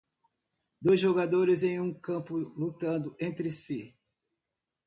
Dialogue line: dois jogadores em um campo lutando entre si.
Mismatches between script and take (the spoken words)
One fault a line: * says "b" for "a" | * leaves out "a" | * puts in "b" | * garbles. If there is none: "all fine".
all fine